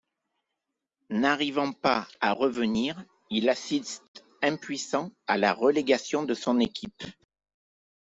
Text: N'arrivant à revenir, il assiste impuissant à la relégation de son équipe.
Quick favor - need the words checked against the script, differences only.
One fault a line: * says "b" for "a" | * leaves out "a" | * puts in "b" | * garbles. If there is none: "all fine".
* puts in "pas"